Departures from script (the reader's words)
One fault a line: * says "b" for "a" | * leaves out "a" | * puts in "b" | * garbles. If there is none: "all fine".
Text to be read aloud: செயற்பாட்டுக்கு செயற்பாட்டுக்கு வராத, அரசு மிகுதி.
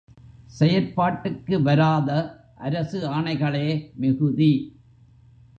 * leaves out "செயற்பாட்டுக்கு"
* puts in "ஆணைகளே"